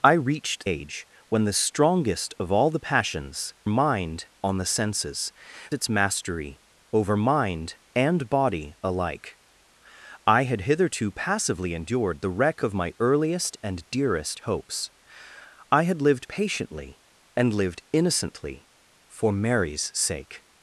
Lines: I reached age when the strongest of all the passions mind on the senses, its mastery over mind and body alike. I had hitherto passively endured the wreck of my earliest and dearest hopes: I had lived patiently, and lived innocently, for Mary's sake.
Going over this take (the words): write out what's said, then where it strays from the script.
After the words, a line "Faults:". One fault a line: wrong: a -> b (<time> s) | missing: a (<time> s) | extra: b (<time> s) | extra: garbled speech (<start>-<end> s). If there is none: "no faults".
I reached age when the strongest of all the passions mind on the senses, its mastery over mind and body alike. I had hitherto passively endured the wreck of my earliest and dearest hopes: I had lived patiently, and lived innocently, for Mary's sake.
Faults:
no faults